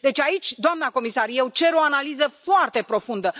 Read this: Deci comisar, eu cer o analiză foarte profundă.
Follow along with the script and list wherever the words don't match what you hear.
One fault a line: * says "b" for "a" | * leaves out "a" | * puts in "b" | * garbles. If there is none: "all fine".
* puts in "aici doamnă"